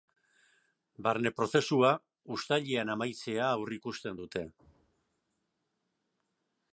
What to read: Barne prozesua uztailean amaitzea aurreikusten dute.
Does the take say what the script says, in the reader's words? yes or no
yes